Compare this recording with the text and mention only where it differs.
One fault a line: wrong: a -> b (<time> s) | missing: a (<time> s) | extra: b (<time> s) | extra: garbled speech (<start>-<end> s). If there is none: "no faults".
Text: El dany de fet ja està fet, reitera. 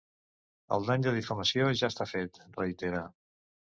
wrong: fet -> difamació (1.2 s)